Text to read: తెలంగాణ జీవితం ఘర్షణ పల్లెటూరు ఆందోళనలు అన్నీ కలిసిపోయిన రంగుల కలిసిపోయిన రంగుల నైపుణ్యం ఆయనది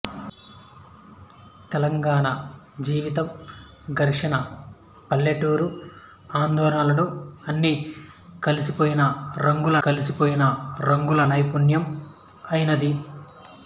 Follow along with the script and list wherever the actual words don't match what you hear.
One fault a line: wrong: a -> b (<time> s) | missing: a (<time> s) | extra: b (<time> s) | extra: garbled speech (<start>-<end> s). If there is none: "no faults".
no faults